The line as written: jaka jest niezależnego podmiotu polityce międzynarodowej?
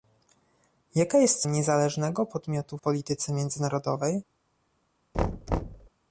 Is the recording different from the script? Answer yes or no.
no